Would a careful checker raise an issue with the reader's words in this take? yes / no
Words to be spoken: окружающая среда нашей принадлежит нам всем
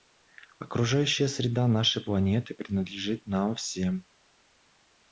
yes